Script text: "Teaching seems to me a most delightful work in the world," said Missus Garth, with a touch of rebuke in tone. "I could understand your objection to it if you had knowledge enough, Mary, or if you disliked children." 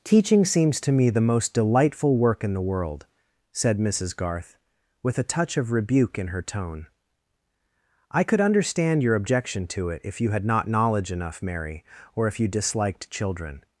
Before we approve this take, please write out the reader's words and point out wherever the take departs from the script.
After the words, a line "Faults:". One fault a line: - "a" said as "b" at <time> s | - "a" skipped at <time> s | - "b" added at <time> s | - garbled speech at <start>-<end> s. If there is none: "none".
"Teaching seems to me the most delightful work in the world," said Missus Garth, with a touch of rebuke in her tone. "I could understand your objection to it if you had not knowledge enough, Mary, or if you disliked children."
Faults:
- "a" said as "the" at 1.1 s
- "her" added at 6.3 s
- "not" added at 10.4 s